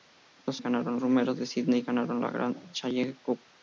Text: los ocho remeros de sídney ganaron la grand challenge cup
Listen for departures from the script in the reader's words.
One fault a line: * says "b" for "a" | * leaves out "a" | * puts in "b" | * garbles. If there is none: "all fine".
* says "ganaron" for "ocho"